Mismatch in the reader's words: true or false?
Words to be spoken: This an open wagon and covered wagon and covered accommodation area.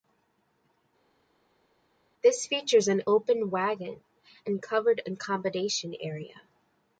true